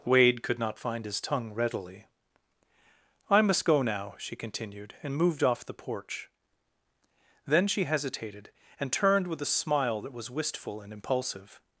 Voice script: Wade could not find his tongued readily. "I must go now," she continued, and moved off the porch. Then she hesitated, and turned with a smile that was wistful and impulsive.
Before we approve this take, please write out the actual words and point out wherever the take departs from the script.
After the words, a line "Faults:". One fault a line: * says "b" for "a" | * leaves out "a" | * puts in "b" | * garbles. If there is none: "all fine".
Wade could not find his tongue readily. "I must go now," she continued, and moved off the porch. Then she hesitated, and turned with a smile that was wistful and impulsive.
Faults:
* says "tongue" for "tongued"